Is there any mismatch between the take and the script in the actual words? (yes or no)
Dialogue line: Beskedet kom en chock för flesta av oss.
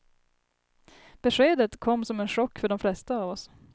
yes